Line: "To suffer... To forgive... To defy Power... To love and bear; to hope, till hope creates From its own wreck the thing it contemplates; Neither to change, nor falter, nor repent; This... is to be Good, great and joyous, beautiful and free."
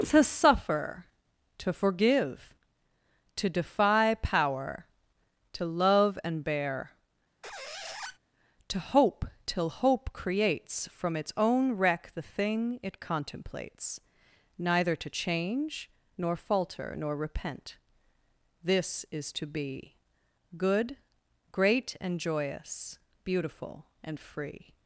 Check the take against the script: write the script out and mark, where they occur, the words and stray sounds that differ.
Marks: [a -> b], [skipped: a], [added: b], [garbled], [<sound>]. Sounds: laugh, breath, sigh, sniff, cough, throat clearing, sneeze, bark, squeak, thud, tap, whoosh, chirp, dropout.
"To suffer... To forgive... To defy Power... To love and bear; [squeak] to hope, till hope creates From its own wreck the thing it contemplates; Neither to change, nor falter, nor repent; This... is to be Good, great and joyous, beautiful and free."